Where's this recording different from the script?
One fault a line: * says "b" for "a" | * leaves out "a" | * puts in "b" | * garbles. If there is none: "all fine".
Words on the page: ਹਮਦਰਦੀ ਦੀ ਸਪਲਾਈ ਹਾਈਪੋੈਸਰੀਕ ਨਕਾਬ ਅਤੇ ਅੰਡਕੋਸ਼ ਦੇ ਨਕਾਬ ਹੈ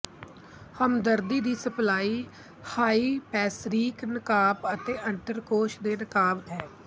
all fine